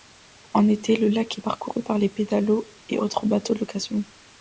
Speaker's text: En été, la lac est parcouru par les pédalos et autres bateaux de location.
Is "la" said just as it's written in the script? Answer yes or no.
no